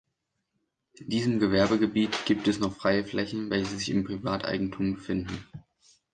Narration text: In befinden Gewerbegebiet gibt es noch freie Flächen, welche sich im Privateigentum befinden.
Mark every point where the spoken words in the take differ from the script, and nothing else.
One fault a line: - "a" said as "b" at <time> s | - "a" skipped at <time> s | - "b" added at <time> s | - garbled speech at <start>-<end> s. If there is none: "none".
- "befinden" said as "diesem" at 1.1 s